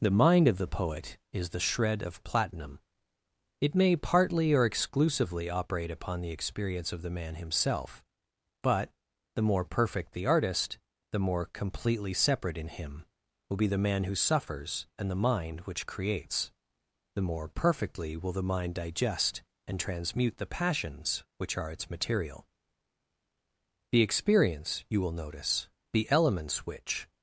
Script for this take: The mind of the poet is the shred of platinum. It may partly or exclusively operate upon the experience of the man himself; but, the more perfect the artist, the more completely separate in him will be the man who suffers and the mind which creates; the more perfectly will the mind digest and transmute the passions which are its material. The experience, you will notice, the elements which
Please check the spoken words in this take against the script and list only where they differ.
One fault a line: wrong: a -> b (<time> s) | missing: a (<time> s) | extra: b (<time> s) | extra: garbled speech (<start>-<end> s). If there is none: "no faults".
no faults